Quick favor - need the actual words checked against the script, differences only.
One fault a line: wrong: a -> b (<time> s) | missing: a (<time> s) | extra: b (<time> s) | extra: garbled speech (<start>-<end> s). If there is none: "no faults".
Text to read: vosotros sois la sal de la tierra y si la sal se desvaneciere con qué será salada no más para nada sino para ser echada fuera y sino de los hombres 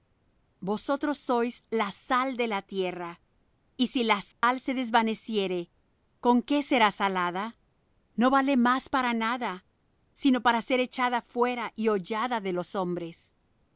extra: vale (8.3 s)
wrong: sino -> hollada (11.9 s)